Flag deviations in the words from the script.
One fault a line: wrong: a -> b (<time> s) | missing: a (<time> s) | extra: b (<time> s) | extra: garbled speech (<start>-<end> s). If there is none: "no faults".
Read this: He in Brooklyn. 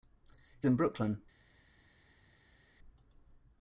no faults